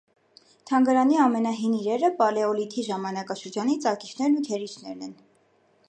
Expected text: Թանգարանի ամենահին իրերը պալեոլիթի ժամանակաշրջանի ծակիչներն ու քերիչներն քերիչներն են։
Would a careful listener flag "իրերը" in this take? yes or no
no